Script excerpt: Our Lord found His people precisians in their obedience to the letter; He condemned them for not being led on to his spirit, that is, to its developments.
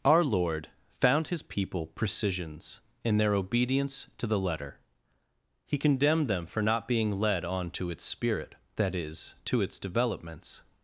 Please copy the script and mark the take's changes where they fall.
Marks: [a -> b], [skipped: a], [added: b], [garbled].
Our Lord found His people precisians in their obedience to the letter; He condemned them for not being led on to [his -> its] spirit, that is, to its developments.